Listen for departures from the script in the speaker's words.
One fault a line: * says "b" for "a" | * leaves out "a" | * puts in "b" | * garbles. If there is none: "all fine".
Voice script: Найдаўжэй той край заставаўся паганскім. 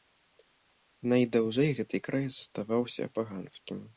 * says "гэты" for "той"